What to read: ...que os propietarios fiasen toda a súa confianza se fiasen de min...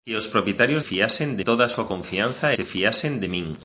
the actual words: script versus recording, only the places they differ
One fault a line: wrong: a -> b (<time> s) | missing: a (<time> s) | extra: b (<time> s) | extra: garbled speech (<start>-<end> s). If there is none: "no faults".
no faults